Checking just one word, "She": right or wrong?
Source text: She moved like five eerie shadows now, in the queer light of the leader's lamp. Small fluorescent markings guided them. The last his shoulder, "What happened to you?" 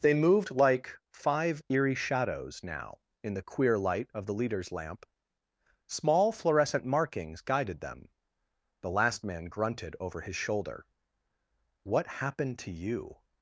wrong